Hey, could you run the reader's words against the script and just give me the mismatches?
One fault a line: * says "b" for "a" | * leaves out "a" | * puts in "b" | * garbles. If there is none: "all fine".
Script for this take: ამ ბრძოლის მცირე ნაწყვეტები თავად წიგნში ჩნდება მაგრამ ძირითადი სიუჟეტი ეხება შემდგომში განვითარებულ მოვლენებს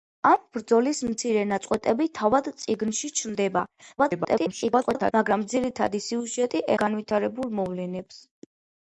* garbles
* leaves out "ეხება შემდგომში"